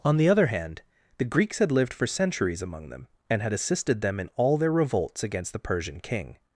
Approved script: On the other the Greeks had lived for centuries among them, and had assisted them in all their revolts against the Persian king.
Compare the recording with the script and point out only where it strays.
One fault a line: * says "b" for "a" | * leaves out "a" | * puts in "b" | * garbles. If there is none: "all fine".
* puts in "hand"